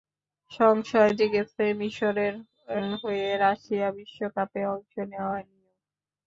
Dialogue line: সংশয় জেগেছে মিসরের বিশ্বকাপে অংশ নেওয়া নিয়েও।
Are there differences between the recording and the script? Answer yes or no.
yes